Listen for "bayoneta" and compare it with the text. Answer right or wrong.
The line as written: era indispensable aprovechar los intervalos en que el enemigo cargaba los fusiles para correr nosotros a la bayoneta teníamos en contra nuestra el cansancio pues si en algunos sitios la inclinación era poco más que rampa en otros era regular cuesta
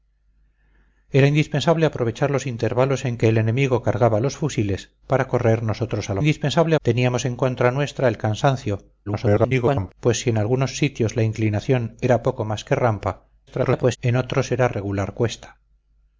wrong